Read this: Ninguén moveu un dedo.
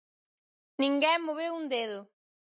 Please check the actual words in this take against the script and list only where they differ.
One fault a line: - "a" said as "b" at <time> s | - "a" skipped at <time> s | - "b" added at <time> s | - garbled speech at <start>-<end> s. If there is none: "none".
none